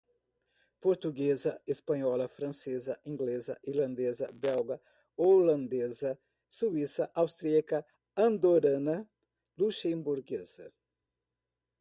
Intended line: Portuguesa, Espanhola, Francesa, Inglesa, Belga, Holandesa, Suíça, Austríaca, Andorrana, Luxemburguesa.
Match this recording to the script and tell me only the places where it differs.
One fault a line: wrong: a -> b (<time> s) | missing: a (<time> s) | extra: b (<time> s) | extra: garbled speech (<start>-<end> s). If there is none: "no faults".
extra: Irlandesa (3.6 s)